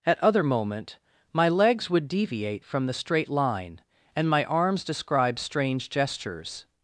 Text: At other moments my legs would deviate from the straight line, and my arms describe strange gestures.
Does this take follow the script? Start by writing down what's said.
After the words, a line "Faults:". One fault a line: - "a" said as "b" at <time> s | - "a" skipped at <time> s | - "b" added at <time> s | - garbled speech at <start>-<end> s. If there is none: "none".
At other moment my legs would deviate from the straight line, and my arms describe strange gestures.
Faults:
- "moments" said as "moment" at 0.4 s